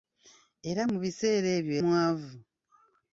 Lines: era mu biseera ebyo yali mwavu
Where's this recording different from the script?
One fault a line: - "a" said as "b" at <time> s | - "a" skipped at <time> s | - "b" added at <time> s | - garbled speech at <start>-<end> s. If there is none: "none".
- "yali" skipped at 1.7 s